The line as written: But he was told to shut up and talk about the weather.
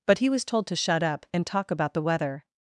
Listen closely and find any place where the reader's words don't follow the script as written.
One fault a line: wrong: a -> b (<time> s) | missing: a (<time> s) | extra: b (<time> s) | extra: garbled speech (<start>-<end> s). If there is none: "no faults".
no faults